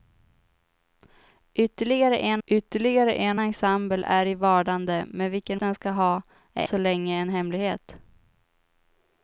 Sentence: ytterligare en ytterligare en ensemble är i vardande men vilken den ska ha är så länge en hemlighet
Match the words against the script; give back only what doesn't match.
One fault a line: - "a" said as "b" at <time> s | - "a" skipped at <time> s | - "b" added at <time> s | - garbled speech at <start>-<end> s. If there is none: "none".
none